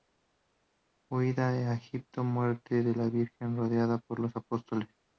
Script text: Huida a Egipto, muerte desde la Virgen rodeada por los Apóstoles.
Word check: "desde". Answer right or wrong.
wrong